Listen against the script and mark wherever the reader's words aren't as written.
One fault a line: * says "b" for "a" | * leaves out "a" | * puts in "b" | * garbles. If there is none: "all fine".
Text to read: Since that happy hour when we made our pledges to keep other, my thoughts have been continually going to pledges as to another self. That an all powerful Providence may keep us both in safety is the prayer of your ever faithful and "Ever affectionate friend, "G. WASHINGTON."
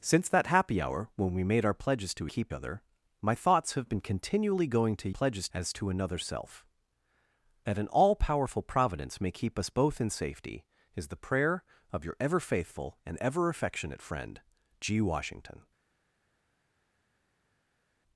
all fine